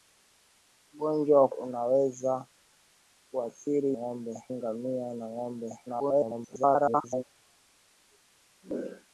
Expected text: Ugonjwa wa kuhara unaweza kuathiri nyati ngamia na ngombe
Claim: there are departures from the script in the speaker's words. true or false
true